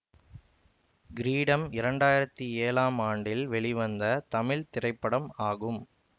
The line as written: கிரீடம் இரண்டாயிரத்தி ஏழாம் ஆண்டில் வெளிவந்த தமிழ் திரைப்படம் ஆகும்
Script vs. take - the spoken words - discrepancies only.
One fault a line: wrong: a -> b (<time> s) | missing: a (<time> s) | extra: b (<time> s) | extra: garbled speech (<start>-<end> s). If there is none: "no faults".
no faults